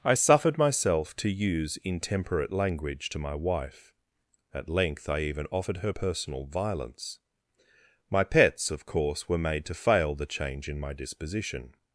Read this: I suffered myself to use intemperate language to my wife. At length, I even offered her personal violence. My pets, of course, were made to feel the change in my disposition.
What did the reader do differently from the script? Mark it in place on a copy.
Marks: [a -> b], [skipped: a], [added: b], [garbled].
I suffered myself to use intemperate language to my wife. At length, I even offered her personal violence. My pets, of course, were made to [feel -> fail] the change in my disposition.